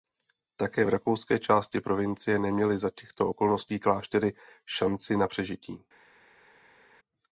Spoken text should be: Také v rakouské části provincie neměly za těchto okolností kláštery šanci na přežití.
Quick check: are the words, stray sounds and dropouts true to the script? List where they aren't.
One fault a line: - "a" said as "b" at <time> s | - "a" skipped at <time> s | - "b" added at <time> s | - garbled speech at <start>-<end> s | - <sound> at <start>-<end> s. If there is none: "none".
none